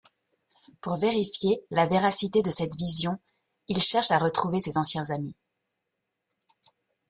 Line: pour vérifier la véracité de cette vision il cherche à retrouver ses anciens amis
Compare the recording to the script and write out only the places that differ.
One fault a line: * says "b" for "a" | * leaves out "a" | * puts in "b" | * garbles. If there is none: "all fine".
all fine